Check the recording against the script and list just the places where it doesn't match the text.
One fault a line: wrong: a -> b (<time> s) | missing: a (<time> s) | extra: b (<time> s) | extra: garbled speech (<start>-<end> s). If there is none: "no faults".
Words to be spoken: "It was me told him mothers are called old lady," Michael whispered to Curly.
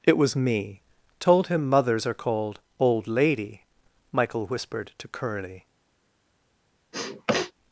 no faults